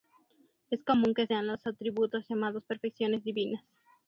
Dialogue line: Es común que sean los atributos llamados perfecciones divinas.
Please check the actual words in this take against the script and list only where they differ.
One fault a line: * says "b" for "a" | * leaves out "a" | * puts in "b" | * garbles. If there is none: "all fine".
all fine